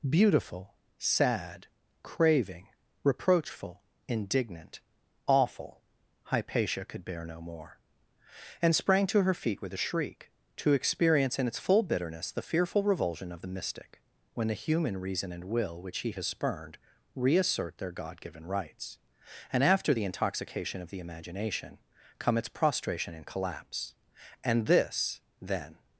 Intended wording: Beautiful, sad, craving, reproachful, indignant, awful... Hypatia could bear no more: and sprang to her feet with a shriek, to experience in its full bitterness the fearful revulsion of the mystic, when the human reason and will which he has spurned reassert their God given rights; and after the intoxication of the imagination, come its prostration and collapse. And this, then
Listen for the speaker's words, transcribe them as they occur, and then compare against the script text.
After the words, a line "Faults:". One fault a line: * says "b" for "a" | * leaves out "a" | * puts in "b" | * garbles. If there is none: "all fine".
Beautiful, sad, craving, reproachful, indignant, awful... Hypatia could bear no more: and sprang to her feet with a shriek, to experience in its full bitterness the fearful revulsion of the mystic, when the human reason and will which he has spurned reassert their God given rights; and after the intoxication of the imagination, come its prostration and collapse. And this, then
Faults:
all fine